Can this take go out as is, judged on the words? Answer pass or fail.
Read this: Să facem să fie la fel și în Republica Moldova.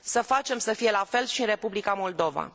pass